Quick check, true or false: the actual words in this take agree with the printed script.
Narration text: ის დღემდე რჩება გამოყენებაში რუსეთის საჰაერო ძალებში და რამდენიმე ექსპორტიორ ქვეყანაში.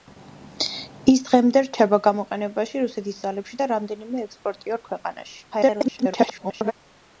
false